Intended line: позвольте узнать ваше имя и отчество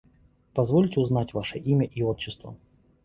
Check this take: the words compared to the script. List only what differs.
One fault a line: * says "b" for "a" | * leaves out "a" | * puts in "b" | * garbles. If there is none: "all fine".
all fine